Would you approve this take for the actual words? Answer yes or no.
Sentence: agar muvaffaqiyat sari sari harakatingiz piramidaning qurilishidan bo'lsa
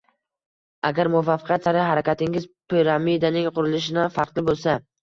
no